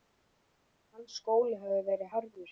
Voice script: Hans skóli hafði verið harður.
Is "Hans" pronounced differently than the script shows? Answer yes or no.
no